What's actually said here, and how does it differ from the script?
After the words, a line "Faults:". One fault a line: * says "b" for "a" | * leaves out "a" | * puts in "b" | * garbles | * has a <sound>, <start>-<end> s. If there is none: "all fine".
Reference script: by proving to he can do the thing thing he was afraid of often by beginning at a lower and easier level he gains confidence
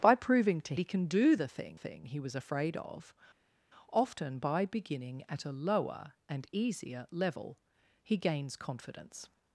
by proving to he can do the thing thing he was afraid of often by beginning at a lower and easier level he gains confidence
Faults:
all fine